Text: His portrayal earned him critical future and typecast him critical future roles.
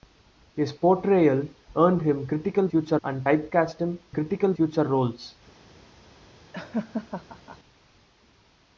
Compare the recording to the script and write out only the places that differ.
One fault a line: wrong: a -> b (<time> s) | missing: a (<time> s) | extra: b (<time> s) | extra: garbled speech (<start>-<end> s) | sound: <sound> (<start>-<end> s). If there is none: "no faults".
sound: laugh (6.5-7.6 s)